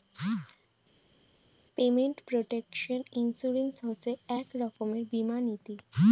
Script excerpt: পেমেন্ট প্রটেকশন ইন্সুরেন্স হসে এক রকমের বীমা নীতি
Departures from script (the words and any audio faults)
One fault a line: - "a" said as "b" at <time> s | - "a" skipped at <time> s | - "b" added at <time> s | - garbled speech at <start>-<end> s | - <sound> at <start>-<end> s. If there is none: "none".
none